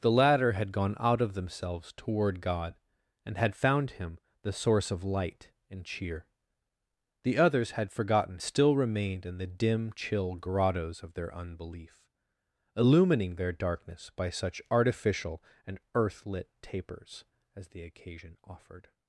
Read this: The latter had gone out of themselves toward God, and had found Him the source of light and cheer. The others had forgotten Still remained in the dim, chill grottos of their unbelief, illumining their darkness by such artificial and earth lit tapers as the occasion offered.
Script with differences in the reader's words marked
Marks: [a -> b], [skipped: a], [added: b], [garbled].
The latter had gone out of themselves toward God, and had found Him the source of light and cheer. The others had forgotten Still remained in the dim, chill grottos of their unbelief, illumining their darkness by such artificial and earth lit tapers as the occasion offered.